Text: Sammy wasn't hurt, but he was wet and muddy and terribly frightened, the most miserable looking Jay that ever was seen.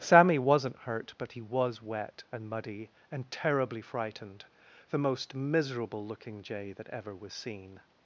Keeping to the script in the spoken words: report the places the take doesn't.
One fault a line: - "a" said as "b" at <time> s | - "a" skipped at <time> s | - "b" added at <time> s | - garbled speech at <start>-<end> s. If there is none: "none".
none